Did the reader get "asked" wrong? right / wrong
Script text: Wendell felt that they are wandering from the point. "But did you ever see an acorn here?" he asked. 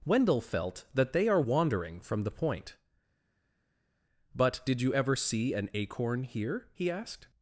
right